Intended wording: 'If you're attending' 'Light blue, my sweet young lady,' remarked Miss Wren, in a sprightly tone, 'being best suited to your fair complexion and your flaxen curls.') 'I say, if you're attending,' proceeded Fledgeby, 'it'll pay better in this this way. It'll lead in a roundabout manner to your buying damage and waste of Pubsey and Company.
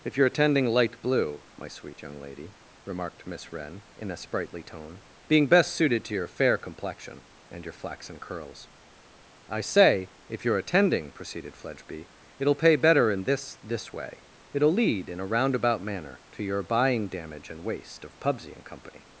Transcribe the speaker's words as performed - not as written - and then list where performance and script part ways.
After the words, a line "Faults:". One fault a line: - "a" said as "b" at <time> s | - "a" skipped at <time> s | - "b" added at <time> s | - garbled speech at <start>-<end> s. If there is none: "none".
'If you're attending' 'Light blue, my sweet young lady,' remarked Miss Wren, in a sprightly tone, 'being best suited to your fair complexion and your flaxen curls.') 'I say, if you're attending,' proceeded Fledgeby, 'it'll pay better in this this way. It'll lead in a roundabout manner to your buying damage and waste of Pubsey and Company.
Faults:
none